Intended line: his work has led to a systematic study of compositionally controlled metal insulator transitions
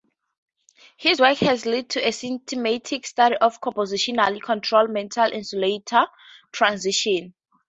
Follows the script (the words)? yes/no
yes